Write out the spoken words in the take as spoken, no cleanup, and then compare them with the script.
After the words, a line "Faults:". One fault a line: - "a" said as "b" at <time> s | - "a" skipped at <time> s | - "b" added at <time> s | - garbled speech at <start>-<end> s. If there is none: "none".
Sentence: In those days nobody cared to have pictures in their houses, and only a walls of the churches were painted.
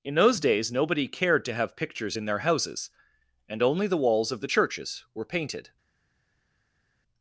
In those days nobody cared to have pictures in their houses, and only the walls of the churches were painted.
Faults:
- "a" said as "the" at 3.9 s